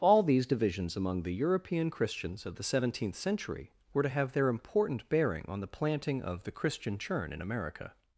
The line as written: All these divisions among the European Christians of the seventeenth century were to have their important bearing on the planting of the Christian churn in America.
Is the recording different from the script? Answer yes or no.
no